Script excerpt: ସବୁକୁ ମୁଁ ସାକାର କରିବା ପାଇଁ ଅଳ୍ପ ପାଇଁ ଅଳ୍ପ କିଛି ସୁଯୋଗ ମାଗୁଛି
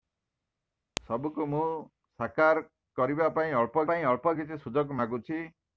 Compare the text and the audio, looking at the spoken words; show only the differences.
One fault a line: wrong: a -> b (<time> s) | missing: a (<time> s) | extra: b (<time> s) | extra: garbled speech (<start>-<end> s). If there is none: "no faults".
no faults